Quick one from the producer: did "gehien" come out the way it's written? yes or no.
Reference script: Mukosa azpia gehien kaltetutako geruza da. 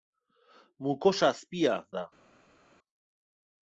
no